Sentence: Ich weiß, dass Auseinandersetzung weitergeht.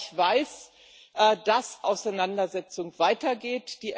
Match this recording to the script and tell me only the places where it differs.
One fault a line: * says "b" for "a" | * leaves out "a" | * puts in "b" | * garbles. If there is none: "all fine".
all fine